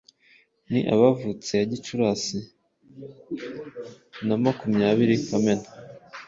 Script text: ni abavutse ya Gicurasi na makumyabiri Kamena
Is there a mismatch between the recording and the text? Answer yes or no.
no